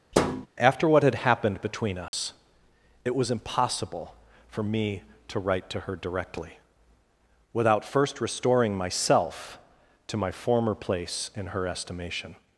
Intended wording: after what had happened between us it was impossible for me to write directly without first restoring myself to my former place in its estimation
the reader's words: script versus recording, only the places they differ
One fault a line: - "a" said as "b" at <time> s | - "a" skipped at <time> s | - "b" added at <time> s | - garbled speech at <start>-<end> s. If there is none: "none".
- "to her" added at 5.7 s
- "its" said as "her" at 11.5 s